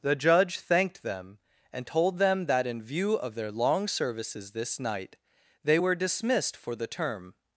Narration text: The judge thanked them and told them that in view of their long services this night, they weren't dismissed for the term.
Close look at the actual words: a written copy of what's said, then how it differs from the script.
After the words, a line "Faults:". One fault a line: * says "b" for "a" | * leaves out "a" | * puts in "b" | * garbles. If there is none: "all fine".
The judge thanked them and told them that in view of their long services this night, they were dismissed for the term.
Faults:
* says "were" for "weren't"